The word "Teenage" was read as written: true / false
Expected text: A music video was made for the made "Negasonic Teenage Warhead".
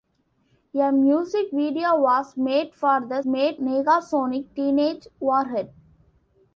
true